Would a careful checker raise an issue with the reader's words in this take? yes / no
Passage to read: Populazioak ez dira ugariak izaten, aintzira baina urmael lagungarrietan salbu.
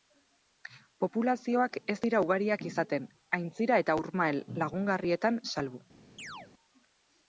yes